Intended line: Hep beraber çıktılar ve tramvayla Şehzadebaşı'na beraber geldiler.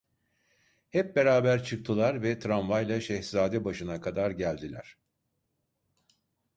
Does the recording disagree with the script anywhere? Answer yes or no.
yes